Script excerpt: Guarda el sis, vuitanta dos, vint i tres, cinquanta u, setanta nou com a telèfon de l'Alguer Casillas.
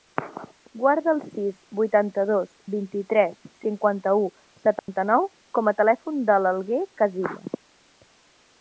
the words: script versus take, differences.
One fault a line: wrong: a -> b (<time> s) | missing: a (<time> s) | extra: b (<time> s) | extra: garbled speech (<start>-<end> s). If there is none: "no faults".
no faults